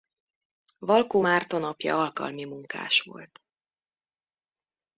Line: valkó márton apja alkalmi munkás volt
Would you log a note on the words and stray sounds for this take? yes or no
no